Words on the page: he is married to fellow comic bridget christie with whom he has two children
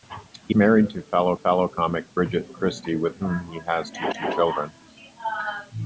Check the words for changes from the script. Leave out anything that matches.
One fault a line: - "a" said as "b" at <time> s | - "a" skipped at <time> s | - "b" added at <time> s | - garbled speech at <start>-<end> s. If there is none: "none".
- "is" skipped at 0.6 s
- "fellow" added at 1.3 s
- "two" added at 4.1 s